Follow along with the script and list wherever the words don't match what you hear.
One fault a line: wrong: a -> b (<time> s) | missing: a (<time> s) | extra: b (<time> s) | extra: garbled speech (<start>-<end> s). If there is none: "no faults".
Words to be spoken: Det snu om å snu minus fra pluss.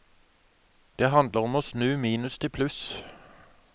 wrong: snu -> handler (1.1 s)
wrong: fra -> til (2.4 s)